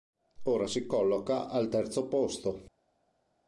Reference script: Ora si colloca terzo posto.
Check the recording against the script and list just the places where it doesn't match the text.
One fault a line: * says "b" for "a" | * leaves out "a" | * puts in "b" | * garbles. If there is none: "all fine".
* puts in "al"